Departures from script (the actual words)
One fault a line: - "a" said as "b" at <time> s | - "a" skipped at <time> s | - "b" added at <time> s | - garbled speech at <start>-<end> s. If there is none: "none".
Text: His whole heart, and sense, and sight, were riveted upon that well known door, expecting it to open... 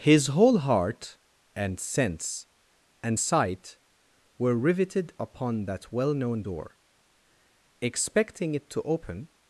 none